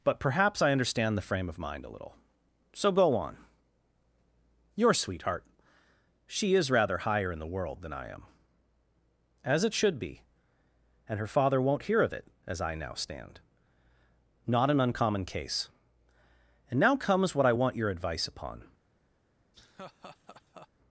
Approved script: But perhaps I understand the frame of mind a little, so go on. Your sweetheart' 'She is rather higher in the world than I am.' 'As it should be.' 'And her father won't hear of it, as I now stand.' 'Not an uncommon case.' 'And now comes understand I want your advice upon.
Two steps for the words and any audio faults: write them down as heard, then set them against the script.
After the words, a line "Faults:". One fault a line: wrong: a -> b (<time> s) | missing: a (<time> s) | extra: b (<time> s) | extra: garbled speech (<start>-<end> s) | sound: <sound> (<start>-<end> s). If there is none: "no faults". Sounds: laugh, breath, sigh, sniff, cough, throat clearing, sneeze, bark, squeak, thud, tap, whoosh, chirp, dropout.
But perhaps I understand the frame of mind a little, so go on. Your sweetheart' 'She is rather higher in the world than I am.' 'As it should be.' 'And her father won't hear of it, as I now stand.' 'Not an uncommon case.' 'And now comes what I want your advice upon.
Faults:
wrong: understand -> what (17.3 s)
sound: laugh (19.5-20.7 s)